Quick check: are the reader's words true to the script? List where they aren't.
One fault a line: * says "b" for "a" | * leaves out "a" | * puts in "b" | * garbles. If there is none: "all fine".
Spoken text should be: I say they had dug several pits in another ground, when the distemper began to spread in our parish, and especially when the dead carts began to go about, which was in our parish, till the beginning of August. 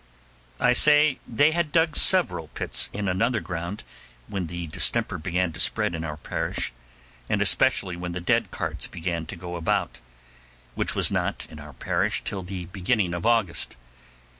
* puts in "not"